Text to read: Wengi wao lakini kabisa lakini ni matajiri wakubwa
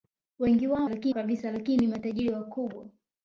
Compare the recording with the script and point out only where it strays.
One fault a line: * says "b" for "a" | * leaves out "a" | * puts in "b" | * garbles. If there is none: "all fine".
all fine